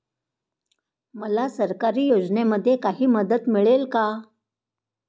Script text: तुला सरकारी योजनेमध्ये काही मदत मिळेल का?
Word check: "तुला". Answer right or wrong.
wrong